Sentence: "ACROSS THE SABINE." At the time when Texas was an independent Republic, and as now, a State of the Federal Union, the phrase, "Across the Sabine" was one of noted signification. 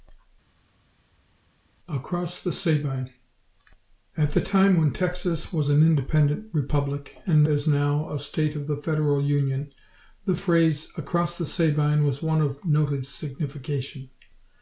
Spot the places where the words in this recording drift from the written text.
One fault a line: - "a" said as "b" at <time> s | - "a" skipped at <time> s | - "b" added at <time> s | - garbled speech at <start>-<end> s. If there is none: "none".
none